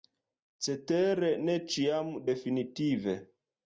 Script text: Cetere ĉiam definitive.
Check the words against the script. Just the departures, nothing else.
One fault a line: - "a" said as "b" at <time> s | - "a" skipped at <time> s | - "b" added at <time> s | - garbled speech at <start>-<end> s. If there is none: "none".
- "ne" added at 1.4 s